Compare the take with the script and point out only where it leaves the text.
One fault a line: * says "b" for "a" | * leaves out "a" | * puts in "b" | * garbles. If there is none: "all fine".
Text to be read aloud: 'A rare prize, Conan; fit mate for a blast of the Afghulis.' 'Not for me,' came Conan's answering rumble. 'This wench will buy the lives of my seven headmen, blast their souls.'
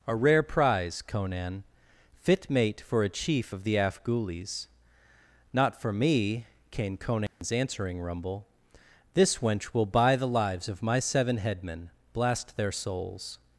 * says "chief" for "blast"